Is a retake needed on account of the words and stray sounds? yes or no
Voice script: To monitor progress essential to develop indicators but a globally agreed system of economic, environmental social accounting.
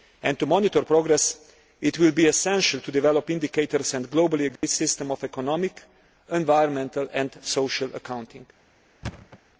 yes